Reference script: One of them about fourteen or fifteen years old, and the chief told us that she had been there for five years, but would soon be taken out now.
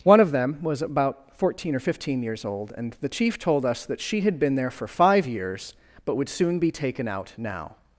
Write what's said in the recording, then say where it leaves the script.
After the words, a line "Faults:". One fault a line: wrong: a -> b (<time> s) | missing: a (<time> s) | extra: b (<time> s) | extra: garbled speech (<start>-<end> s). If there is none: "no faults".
One of them was about fourteen or fifteen years old, and the chief told us that she had been there for five years, but would soon be taken out now.
Faults:
extra: was (0.6 s)